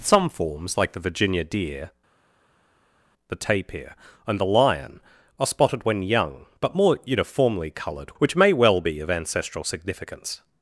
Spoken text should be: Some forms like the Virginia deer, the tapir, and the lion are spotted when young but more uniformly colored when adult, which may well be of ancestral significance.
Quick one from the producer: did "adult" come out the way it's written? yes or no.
no